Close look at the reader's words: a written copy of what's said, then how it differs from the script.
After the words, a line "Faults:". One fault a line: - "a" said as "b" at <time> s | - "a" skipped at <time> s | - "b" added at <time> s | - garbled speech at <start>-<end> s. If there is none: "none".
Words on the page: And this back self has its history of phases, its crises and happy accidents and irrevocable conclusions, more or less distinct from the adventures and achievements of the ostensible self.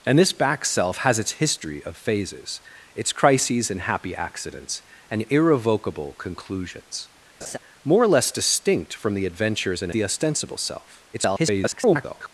And this back self has its history of phases, its crises and happy accidents and irrevocable conclusions, more or less distinct from the adventures and the ostensible self. [garbled]
Faults:
- "achievements of" skipped at 9.9 s
- garbled speech at 11.1-12.3 s